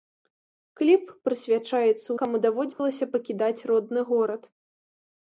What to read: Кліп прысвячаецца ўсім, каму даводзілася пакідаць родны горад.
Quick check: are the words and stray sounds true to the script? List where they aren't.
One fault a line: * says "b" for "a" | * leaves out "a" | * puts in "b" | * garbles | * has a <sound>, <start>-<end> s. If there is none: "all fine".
* leaves out "ўсім"
* has a dropout, 2.7-2.8 s